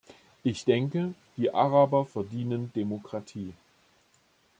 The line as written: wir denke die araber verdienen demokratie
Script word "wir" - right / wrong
wrong